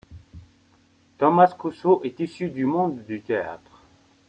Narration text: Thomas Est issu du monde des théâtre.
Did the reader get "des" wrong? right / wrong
wrong